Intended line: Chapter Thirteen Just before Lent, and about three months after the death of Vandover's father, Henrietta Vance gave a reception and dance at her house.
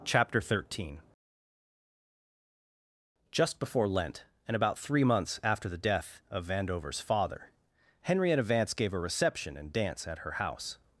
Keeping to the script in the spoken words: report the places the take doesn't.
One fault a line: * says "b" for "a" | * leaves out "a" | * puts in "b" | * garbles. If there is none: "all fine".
all fine